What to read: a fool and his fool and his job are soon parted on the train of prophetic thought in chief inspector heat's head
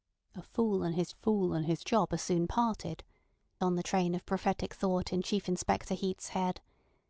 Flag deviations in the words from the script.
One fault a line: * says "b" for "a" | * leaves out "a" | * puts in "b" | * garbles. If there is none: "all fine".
all fine